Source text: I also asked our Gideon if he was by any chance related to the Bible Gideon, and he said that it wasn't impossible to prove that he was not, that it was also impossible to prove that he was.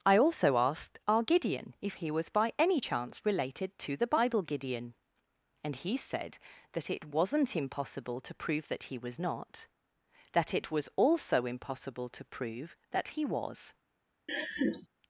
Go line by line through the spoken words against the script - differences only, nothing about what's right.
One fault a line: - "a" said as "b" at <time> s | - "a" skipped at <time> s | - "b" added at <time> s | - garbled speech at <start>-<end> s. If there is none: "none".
none